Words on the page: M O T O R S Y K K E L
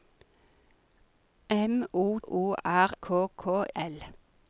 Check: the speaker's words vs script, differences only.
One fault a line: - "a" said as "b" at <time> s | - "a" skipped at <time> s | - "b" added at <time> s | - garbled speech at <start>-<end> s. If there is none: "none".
- "T" skipped at 2.2 s
- "S Y" skipped at 2.9 s
- "E" skipped at 3.6 s